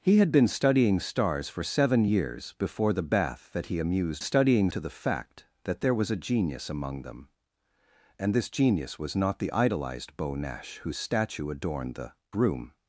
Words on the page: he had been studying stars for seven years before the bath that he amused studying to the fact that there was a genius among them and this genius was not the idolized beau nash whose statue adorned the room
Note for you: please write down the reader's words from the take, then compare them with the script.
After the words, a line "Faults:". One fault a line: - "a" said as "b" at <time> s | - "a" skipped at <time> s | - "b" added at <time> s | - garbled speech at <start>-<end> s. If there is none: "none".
he had been studying stars for seven years before the bath that he amused studying to the fact that there was a genius among them and this genius was not the idolized beau nash whose statue adorned the room
Faults:
none